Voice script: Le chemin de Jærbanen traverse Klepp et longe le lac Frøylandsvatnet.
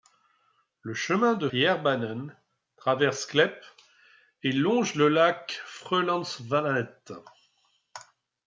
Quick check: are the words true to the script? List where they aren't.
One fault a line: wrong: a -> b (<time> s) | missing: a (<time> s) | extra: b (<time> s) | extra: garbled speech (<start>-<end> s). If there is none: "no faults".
no faults